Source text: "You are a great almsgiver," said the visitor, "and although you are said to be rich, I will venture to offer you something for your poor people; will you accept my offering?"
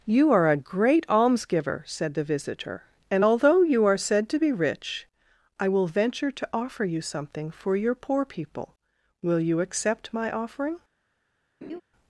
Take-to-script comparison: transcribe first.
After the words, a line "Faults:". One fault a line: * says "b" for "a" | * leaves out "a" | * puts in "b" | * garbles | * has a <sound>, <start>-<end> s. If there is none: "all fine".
"You are a great almsgiver," said the visitor, "and although you are said to be rich, I will venture to offer you something for your poor people; will you accept my offering?"
Faults:
* has a laugh, 11.6-11.8 s